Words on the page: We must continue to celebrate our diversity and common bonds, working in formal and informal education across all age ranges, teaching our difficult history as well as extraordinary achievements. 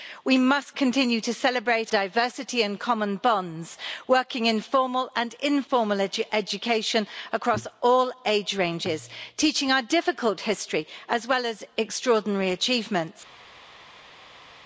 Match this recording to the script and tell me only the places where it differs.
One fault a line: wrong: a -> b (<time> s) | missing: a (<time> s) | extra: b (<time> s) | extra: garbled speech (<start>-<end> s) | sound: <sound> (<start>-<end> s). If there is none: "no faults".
missing: our (1.9 s)